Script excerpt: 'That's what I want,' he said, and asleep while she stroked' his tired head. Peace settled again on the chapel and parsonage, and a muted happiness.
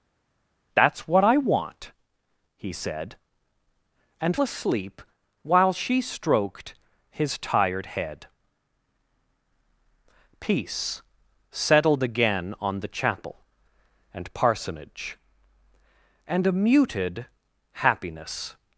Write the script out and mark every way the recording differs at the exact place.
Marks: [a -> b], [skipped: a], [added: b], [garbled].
'That's what I want,' he said, and asleep while she stroked' his tired head. Peace settled again on the chapel and parsonage, and a muted happiness.